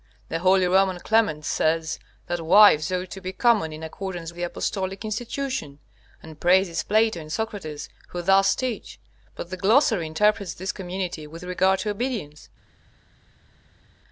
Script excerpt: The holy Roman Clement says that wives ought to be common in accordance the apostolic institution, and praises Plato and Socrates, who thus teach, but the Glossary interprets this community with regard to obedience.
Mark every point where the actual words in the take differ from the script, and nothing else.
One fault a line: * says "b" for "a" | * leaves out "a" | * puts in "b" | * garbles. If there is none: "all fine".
all fine